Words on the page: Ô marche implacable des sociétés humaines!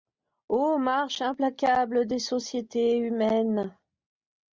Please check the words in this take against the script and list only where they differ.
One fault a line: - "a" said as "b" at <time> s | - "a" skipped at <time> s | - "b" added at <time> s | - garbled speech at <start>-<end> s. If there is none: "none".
none